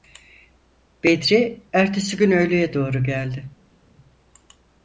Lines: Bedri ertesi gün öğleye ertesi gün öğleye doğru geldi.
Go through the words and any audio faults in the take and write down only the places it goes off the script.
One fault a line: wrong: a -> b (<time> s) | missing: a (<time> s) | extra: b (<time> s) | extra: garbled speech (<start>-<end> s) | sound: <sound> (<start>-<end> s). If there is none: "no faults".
missing: ertesi gün öğleye (2.7 s)